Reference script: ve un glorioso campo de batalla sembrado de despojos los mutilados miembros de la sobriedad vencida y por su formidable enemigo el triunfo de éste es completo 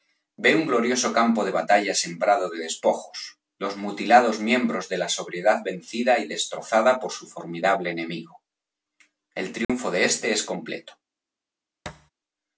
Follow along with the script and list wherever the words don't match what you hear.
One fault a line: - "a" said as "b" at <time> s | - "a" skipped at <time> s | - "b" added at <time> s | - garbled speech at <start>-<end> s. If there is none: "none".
- "destrozada" added at 6.3 s